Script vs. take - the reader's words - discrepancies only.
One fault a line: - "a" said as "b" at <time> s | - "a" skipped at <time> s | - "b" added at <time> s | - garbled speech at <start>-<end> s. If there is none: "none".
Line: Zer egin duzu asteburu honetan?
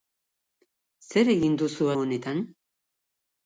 - "asteburu" skipped at 1.9 s